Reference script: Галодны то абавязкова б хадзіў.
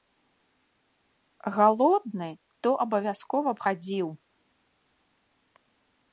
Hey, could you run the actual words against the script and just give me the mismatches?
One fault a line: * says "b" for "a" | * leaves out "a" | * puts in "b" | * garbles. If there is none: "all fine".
all fine